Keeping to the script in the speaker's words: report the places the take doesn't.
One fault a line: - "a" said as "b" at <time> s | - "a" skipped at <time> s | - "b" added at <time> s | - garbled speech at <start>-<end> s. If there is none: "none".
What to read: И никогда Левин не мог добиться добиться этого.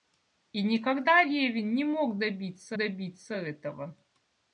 none